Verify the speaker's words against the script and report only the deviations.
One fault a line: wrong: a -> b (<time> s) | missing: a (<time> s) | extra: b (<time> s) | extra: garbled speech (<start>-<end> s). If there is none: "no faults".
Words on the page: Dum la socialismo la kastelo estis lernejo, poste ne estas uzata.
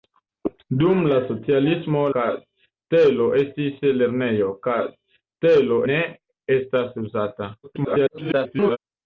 missing: la (2.0 s)
wrong: poste -> kastelo (4.7 s)
extra: garbled speech (7.6-8.8 s)